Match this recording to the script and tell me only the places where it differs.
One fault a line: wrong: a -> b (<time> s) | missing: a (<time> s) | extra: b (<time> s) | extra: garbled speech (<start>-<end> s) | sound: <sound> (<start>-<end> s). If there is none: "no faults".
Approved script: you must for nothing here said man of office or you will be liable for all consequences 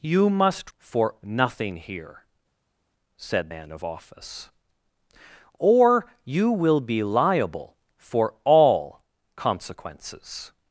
no faults